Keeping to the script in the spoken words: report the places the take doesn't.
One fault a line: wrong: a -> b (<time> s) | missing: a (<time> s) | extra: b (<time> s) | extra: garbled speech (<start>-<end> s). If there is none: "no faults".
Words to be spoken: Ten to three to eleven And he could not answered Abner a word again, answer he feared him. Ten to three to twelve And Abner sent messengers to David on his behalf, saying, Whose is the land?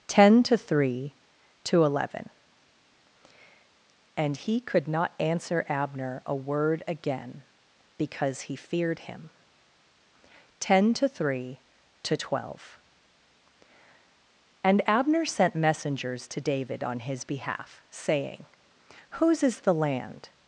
wrong: answered -> answer (5.2 s)
wrong: answer -> because (8.0 s)